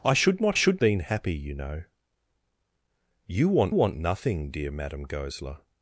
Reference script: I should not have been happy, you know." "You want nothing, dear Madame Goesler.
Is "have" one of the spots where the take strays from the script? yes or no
yes